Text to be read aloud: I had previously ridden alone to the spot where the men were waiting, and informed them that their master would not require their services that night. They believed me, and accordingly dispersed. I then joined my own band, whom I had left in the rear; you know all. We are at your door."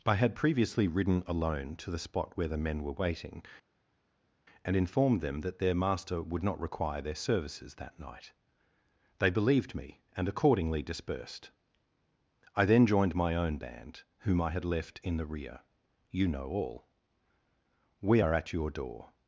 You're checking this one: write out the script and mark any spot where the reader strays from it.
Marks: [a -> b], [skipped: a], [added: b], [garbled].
I had previously ridden alone to the spot where the men were waiting, and informed them that their master would not require their services that night. They believed me, and accordingly dispersed. I then joined my own band, whom I had left in the rear; you know all. We are at your door."